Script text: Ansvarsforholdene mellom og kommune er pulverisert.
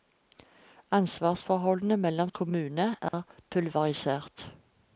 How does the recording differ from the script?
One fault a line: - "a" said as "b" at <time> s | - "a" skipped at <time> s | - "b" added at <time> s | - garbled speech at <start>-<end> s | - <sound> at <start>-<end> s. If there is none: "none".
- dropout at 3.1-3.1 s